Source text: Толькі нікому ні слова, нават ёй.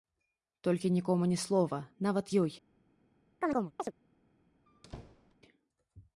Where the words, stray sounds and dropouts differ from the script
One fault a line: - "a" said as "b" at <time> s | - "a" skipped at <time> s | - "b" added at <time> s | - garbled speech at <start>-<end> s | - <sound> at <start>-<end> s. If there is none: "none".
- chirp at 3.4-3.9 s
- squeak at 4.7-5.4 s